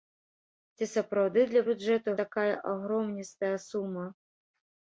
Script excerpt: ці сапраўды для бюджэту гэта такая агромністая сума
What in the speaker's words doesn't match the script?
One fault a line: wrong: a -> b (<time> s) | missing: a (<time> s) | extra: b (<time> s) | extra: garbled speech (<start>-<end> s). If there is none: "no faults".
missing: гэта (2.2 s)